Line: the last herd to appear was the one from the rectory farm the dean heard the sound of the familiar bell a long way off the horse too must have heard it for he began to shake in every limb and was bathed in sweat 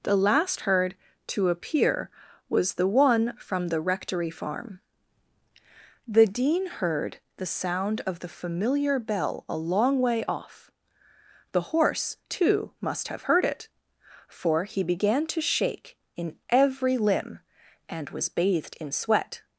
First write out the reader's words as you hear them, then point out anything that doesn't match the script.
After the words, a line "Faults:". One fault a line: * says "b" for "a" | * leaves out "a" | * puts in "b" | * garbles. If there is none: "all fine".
the last herd to appear was the one from the rectory farm the dean heard the sound of the familiar bell a long way off the horse too must have heard it for he began to shake in every limb and was bathed in sweat
Faults:
all fine